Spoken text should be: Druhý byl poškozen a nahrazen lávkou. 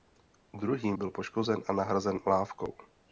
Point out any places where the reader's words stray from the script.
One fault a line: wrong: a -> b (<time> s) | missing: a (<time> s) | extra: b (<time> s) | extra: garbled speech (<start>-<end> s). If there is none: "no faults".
no faults